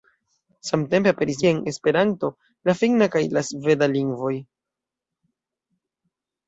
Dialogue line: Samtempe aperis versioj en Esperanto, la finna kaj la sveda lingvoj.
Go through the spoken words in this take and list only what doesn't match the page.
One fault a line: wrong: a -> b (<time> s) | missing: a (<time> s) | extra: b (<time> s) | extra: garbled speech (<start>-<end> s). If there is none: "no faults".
missing: versioj (1.4 s)